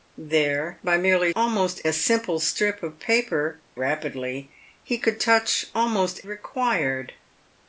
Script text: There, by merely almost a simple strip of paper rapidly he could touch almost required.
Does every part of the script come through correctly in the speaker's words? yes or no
yes